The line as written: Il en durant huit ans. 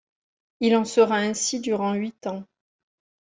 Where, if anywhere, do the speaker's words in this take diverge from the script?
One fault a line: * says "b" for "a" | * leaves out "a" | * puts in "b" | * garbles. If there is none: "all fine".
* puts in "sera ainsi"